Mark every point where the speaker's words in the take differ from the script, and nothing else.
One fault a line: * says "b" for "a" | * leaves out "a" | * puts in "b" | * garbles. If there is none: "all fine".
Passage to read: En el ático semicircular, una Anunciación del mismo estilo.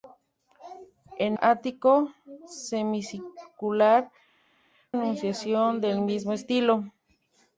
* leaves out "el"
* leaves out "una"